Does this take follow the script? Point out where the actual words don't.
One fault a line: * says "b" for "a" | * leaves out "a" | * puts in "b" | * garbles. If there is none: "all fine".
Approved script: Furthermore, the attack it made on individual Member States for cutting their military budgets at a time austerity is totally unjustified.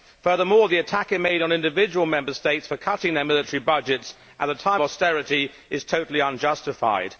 all fine